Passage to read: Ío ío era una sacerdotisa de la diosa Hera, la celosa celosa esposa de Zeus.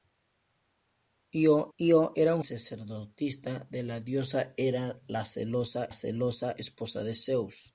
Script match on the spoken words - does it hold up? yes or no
yes